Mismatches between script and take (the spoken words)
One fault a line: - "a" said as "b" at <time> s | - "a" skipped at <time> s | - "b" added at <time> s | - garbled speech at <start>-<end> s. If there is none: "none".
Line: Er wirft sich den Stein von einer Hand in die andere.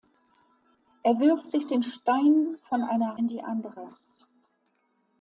- "Hand" skipped at 3.2 s